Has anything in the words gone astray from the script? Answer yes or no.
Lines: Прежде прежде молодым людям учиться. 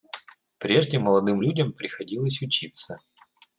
yes